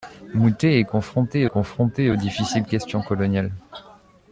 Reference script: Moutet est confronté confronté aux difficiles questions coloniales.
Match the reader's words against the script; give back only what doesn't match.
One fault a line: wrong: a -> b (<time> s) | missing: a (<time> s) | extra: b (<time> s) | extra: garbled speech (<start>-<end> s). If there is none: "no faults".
no faults